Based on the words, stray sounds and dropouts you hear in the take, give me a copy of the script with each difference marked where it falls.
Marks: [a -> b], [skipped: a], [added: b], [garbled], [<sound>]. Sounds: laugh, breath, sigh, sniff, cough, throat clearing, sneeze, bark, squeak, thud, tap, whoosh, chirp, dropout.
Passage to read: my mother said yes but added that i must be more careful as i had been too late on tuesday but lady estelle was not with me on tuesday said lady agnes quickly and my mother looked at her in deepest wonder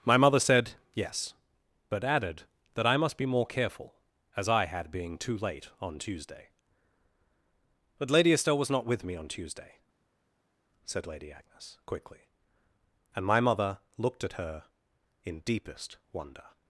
my mother said yes but added that i must be more careful as i had [been -> being] too late on tuesday but lady estelle was not with me on tuesday said lady agnes quickly and my mother looked at her in deepest wonder